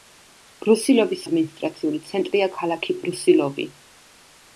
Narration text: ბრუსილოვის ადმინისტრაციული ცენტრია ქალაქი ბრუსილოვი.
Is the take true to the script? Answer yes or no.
yes